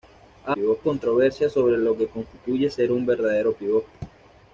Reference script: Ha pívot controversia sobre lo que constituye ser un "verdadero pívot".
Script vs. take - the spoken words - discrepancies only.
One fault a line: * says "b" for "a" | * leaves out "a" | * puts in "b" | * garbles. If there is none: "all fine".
all fine